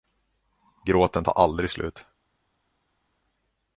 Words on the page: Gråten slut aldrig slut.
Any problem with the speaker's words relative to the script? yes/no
yes